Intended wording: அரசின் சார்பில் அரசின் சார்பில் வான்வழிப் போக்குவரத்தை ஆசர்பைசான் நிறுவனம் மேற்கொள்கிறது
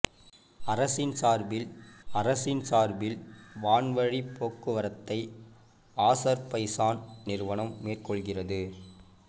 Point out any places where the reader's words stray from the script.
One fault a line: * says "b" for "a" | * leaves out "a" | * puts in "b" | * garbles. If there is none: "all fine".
all fine